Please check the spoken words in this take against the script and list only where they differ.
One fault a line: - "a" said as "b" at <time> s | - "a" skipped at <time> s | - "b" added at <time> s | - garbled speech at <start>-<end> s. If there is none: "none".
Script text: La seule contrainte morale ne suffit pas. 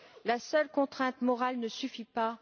none